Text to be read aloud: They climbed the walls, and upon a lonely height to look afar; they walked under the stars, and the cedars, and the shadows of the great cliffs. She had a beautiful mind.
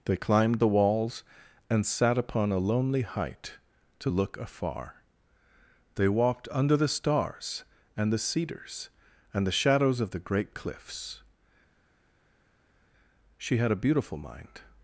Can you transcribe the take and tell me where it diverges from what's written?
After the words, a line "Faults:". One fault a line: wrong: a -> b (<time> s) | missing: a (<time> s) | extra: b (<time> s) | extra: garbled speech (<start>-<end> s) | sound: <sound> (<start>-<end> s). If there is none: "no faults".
They climbed the walls, and sat upon a lonely height to look afar; they walked under the stars, and the cedars, and the shadows of the great cliffs. She had a beautiful mind.
Faults:
extra: sat (1.9 s)